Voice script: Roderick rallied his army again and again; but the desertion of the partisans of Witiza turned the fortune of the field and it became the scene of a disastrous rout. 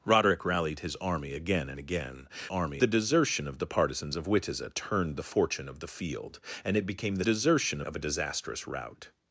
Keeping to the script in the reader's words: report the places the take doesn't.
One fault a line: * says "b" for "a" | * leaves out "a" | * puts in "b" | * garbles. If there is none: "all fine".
* says "army" for "but"
* says "desertion" for "scene"